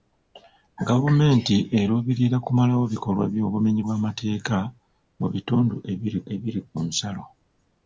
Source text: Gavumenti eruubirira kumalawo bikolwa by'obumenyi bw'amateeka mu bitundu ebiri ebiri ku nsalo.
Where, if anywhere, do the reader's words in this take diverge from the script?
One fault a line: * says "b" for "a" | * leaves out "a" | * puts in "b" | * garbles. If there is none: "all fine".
all fine